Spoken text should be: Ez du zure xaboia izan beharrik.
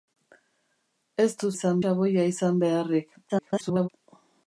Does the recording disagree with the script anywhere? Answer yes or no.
yes